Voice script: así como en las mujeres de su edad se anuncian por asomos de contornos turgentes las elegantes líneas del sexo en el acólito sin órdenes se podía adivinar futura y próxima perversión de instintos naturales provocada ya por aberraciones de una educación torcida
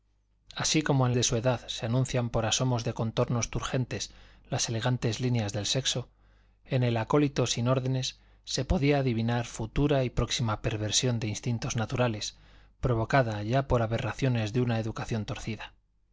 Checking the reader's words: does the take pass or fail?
fail